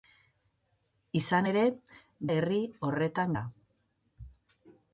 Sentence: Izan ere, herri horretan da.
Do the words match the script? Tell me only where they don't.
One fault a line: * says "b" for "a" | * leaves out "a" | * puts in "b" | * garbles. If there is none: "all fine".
all fine